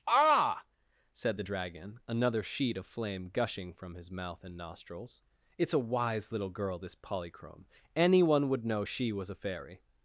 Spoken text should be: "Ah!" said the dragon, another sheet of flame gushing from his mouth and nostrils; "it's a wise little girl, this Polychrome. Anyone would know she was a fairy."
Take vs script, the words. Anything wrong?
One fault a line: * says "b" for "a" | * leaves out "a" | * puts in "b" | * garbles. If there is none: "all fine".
all fine